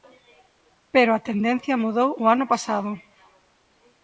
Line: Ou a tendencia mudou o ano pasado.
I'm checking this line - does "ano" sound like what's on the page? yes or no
yes